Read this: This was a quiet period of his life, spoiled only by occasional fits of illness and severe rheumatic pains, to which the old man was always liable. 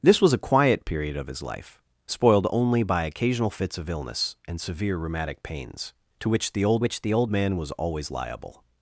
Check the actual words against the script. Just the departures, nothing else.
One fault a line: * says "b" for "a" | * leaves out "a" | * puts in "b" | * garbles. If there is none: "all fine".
* puts in "which the old"